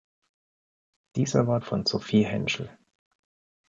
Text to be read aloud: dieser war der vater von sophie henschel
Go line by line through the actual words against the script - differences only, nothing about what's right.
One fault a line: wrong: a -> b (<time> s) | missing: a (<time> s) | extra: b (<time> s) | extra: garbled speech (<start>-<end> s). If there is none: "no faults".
missing: der vater (1.6 s)